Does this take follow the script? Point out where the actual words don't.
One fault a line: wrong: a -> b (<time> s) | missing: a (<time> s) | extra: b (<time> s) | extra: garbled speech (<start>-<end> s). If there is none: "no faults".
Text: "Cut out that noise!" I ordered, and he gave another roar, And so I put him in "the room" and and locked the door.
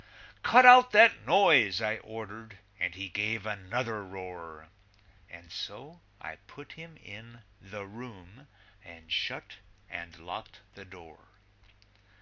extra: shut (9.1 s)